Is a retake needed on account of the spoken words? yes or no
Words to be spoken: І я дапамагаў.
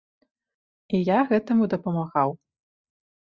yes